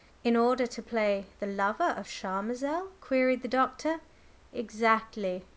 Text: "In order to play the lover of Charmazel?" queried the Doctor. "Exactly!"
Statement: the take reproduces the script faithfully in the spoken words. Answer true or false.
true